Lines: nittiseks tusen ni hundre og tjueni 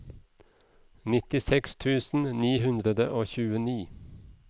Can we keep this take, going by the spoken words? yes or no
yes